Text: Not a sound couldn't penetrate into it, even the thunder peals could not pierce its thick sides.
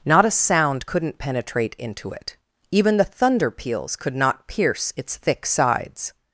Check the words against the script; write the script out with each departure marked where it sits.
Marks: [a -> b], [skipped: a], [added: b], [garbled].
Not a sound couldn't penetrate into it, even the thunder peals could not pierce its thick sides.